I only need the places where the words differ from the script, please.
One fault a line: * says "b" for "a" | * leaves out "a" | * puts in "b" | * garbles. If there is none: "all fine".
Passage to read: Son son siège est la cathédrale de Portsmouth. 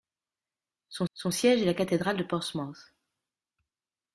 all fine